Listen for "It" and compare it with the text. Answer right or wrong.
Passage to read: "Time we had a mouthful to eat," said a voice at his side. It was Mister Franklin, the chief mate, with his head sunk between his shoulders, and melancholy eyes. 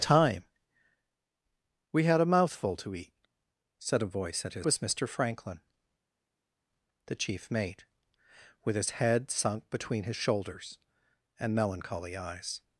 wrong